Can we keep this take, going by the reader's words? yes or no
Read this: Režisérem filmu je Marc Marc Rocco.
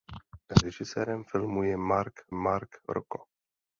yes